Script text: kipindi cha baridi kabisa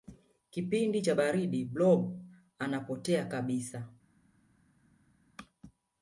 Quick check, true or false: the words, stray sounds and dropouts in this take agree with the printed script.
false